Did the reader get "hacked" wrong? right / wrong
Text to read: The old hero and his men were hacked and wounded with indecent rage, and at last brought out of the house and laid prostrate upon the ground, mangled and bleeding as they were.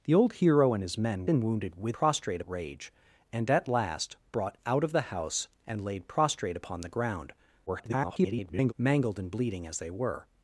wrong